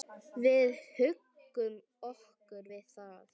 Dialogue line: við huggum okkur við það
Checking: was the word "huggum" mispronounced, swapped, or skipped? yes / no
no